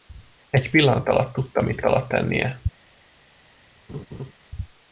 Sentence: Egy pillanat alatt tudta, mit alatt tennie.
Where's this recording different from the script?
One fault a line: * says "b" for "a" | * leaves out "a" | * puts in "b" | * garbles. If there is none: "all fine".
all fine